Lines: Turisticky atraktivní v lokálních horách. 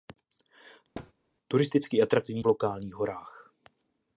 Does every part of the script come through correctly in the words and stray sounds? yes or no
no